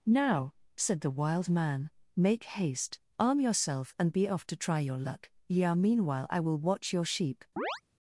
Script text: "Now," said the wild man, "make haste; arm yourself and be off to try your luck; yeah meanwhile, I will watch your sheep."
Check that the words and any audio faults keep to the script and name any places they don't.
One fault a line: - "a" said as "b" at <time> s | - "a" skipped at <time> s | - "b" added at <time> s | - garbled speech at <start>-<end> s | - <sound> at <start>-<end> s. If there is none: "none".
- chirp at 7.6-7.8 s